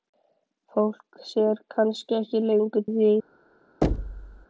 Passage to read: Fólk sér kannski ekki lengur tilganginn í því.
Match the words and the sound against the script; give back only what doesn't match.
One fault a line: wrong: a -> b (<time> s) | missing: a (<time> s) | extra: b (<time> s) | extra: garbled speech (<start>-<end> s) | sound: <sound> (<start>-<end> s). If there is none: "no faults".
missing: tilganginn (2.9 s)
sound: thud (3.8-4.5 s)